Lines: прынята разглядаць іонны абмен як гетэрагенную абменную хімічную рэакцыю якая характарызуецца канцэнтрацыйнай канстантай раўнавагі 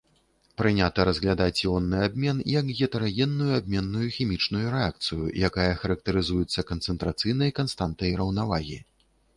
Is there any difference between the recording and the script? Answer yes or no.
no